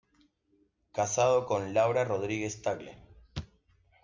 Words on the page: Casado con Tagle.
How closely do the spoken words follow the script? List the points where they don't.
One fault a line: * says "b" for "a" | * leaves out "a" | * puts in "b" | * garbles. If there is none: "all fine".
* puts in "Laura Rodríguez"